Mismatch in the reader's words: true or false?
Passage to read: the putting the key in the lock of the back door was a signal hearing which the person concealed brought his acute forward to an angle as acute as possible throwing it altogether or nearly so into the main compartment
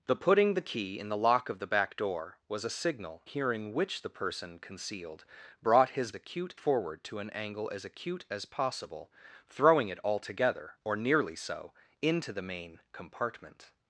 false